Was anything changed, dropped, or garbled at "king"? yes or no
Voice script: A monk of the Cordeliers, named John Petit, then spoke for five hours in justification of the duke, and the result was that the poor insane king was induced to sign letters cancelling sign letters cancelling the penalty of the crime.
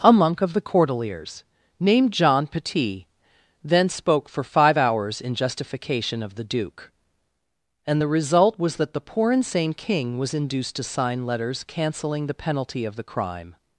no